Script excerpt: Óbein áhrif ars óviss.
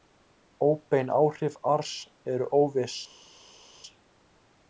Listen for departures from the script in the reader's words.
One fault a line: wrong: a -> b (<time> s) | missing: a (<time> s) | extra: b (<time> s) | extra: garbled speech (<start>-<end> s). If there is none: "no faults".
extra: eru (2.4 s)